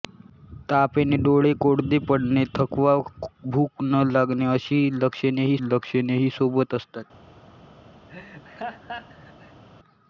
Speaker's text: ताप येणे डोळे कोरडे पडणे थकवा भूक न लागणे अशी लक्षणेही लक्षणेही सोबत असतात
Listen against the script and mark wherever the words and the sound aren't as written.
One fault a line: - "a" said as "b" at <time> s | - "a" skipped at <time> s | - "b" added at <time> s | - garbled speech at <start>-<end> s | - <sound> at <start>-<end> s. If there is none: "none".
- laugh at 8.1-9.6 s